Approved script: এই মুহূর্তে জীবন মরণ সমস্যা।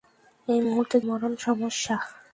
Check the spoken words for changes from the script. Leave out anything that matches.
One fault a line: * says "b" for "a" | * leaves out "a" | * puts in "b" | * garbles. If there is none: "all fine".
* leaves out "জীবন"